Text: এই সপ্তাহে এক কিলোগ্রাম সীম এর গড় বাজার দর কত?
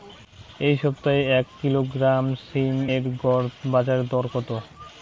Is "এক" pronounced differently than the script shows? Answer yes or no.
no